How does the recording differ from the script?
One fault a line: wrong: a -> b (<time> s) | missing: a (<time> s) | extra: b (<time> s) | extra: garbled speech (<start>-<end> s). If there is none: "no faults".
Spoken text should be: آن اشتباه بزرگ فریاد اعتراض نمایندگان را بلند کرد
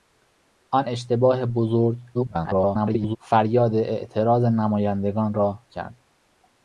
extra: garbled speech (2.1-3.2 s)
missing: بلند (5.6 s)